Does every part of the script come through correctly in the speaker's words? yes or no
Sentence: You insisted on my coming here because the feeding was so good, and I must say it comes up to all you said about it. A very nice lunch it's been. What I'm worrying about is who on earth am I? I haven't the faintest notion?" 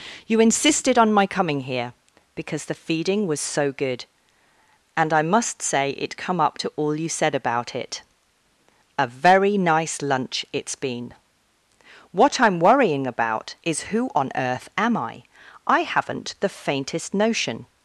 no